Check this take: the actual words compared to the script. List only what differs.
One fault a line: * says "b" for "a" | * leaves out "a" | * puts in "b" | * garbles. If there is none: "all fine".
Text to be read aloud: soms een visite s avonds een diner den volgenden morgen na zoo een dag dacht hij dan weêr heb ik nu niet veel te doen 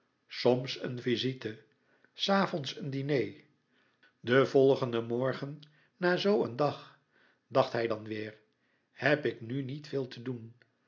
all fine